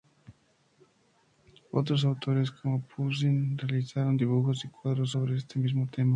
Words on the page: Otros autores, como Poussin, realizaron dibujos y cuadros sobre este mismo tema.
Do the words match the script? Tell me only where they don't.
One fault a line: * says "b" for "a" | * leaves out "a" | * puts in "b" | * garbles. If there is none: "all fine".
all fine